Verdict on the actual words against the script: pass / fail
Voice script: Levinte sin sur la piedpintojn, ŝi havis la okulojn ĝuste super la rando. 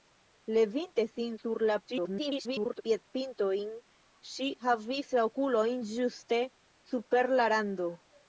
fail